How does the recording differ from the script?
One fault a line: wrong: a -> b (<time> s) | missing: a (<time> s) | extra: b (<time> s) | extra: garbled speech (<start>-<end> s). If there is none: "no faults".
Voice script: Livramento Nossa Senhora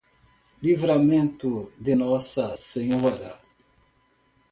extra: de (1.8 s)